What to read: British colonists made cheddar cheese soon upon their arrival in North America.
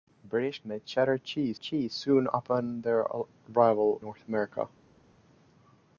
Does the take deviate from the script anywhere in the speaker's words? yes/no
yes